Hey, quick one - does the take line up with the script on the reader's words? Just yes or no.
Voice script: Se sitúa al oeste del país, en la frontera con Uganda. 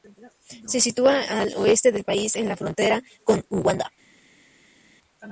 yes